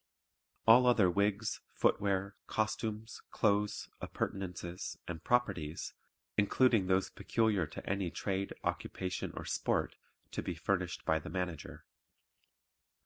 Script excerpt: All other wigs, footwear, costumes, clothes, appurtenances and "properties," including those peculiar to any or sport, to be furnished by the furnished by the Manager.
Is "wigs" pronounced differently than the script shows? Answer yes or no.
no